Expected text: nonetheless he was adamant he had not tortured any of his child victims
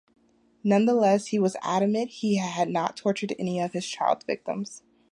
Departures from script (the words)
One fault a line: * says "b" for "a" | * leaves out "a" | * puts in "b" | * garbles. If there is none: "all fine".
all fine